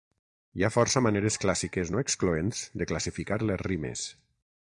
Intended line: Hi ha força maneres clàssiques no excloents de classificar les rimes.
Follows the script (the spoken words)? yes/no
yes